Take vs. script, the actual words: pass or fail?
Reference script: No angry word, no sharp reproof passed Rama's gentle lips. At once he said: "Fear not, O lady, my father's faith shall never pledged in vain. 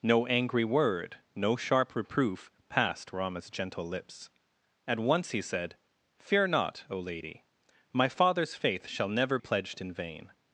pass